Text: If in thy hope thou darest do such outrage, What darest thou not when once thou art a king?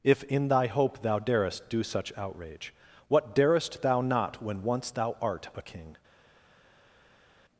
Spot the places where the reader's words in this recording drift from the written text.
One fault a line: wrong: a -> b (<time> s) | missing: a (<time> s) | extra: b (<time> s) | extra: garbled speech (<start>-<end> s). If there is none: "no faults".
no faults